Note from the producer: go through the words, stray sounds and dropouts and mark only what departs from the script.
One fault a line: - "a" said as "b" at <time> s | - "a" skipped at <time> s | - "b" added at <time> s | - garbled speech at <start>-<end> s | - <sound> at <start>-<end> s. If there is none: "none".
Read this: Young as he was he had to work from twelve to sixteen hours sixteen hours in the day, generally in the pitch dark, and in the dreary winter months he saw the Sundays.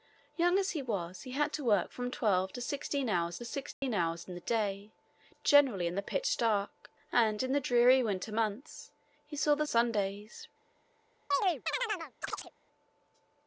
- dropout at 3.7-3.8 s
- chirp at 11.3-12.5 s